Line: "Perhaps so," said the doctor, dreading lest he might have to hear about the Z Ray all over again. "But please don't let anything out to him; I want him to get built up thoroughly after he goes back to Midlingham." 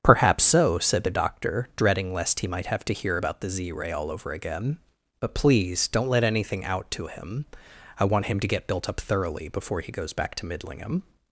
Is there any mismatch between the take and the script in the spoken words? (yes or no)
yes